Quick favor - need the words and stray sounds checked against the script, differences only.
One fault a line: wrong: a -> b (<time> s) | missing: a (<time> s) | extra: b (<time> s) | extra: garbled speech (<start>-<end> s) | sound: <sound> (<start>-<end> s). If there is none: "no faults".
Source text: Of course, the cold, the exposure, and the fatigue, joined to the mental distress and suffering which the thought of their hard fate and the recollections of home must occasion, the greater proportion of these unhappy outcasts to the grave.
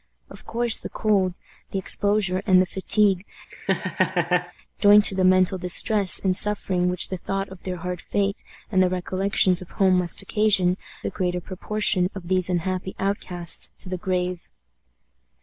sound: laugh (3.5-4.5 s)